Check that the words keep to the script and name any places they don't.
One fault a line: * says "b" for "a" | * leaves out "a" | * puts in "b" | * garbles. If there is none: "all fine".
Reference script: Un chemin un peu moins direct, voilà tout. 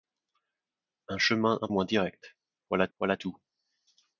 * leaves out "peu"
* puts in "voilà"